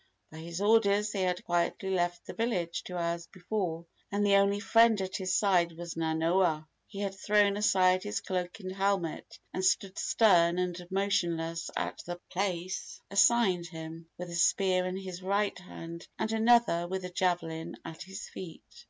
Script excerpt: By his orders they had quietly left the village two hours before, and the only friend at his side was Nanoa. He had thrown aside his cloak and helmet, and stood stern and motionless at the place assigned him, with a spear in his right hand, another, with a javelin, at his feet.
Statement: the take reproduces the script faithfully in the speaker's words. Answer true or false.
false